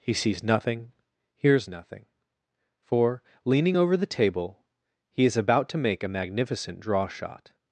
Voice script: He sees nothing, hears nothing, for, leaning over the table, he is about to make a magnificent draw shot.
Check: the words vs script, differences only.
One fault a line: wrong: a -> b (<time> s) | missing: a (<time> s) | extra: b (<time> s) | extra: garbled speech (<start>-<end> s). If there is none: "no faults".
no faults